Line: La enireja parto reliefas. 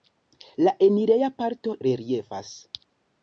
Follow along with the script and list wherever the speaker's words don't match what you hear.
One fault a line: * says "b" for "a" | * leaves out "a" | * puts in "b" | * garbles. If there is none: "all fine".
all fine